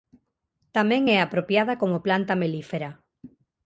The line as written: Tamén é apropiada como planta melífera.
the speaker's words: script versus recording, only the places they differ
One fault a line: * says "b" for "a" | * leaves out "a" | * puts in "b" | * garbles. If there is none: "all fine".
all fine